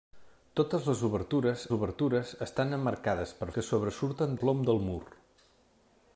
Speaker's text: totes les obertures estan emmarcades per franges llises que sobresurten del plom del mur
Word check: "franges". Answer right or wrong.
wrong